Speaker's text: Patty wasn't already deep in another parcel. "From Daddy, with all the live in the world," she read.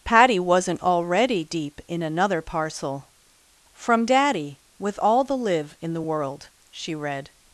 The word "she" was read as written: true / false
true